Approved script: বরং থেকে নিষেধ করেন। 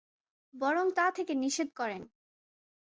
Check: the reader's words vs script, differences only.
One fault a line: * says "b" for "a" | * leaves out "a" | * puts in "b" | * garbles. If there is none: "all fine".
* puts in "তা"